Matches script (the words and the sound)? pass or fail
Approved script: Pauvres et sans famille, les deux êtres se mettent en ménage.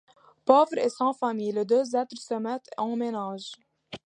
pass